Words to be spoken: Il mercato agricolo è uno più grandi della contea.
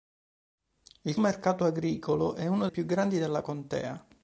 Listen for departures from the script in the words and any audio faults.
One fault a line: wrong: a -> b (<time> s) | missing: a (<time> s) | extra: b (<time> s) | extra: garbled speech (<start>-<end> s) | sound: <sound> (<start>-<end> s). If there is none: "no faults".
no faults